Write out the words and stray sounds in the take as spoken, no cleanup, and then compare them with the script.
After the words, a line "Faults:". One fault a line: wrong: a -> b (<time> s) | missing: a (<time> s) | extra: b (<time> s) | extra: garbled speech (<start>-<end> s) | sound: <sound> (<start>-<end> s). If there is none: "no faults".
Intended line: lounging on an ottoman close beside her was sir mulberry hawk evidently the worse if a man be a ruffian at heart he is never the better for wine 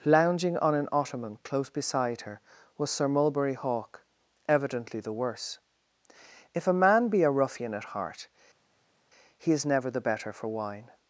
lounging on an ottoman close beside her was sir mulberry hawk evidently the worse if a man be a ruffian at heart he is never the better for wine
Faults:
no faults